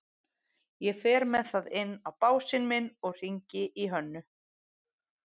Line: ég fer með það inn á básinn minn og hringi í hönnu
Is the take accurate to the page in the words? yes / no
yes